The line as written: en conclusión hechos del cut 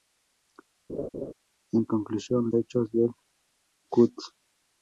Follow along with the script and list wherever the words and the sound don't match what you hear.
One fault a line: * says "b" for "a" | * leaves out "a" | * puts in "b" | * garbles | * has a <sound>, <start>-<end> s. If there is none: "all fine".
* has a laugh, 0.9-1.3 s